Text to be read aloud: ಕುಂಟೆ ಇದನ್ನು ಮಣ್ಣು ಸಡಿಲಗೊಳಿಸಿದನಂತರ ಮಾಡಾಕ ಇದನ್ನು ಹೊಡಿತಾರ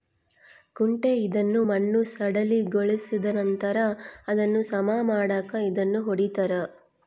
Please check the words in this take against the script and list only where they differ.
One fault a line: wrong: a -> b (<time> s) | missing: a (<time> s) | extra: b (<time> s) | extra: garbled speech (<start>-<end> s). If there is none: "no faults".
extra: ಅದನ್ನು ಸಮ (4.3 s)